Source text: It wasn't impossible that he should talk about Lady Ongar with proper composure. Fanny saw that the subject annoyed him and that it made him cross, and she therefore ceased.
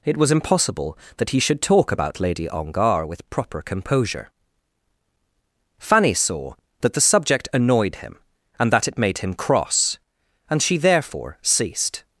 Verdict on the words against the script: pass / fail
fail